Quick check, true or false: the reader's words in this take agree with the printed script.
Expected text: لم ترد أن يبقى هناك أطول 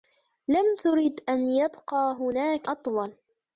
true